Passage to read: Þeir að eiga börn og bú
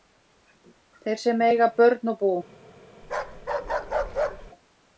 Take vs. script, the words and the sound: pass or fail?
fail